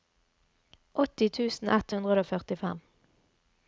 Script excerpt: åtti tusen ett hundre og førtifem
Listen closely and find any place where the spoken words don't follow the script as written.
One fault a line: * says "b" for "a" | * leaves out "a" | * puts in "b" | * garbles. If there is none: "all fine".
all fine